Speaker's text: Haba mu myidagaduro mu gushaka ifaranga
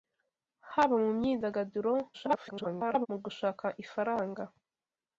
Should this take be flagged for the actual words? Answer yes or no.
yes